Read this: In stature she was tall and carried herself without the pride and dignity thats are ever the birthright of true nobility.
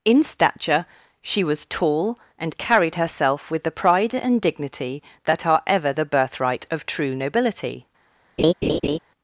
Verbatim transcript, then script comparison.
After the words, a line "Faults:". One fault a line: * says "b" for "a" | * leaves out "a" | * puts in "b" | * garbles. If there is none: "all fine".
In stature she was tall and carried herself with the pride and dignity that are ever the birthright of true nobility.
Faults:
* says "with" for "without"
* says "that" for "thats"